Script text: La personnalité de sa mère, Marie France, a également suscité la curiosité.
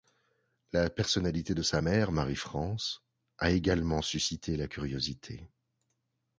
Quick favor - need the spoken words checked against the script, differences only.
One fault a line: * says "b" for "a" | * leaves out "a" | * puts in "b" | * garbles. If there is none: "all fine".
all fine